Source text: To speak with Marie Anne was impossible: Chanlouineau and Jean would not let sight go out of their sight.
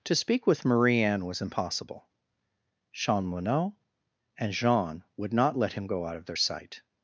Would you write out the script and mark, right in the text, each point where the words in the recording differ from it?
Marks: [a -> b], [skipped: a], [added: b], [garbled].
To speak with Marie Anne was impossible: Chanlouineau and Jean would not let [sight -> him] go out of their sight.